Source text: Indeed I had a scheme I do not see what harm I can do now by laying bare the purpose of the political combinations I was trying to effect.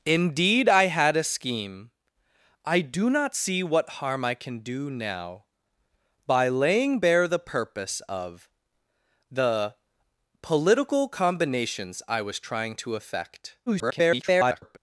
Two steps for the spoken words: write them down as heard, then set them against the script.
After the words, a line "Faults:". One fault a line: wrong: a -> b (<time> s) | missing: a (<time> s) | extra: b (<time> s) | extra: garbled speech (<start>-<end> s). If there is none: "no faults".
Indeed I had a scheme I do not see what harm I can do now by laying bare the purpose of the political combinations I was trying to effect. [garbled]
Faults:
extra: garbled speech (13.7-14.8 s)